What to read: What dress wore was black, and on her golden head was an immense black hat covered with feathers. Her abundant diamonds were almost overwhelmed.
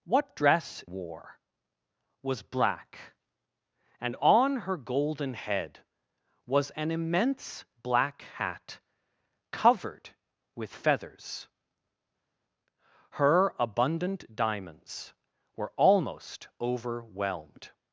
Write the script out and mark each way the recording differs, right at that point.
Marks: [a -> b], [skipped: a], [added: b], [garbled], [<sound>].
What dress wore was black, and on her golden head was an immense black hat covered with feathers. Her abundant diamonds were almost overwhelmed.